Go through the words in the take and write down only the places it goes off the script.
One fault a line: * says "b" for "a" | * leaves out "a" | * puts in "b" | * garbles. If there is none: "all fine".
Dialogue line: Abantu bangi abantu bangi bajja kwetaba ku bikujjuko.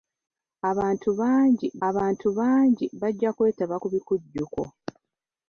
all fine